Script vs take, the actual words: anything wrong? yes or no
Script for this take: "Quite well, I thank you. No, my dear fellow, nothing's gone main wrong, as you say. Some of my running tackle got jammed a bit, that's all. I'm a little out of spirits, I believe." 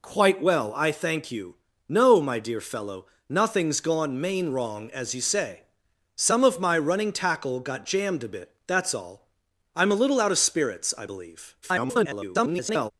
yes